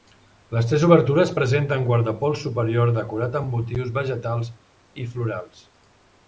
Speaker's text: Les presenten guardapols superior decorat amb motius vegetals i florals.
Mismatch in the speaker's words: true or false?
true